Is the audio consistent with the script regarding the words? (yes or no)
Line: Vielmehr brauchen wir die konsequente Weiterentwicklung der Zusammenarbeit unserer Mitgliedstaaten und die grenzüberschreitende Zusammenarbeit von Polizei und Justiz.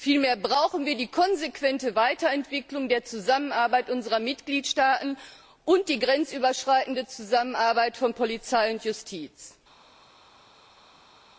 yes